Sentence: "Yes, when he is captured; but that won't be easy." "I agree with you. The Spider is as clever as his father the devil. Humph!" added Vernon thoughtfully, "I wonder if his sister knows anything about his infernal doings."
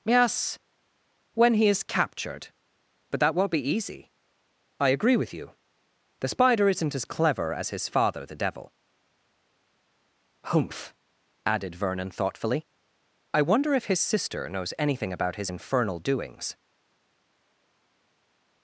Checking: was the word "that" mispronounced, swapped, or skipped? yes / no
no